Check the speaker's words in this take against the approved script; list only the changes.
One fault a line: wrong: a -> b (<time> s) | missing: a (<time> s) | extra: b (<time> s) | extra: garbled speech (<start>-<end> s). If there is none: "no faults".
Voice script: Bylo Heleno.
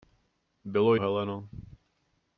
no faults